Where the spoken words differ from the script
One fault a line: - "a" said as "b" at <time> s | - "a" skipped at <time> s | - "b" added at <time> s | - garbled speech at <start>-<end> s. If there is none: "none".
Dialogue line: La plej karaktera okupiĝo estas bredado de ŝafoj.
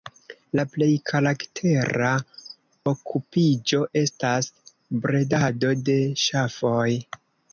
none